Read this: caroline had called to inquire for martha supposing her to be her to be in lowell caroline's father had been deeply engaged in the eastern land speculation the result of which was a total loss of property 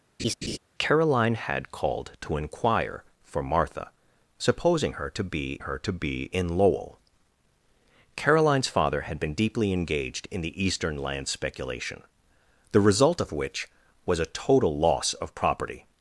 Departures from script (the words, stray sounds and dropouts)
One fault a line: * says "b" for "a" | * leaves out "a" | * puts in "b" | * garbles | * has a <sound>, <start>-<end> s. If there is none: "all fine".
* has a laugh, 0.2-0.6 s